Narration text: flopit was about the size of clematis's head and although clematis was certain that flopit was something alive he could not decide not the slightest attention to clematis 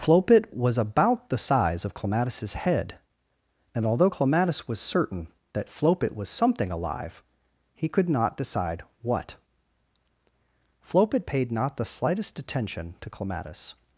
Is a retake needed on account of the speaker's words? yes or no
yes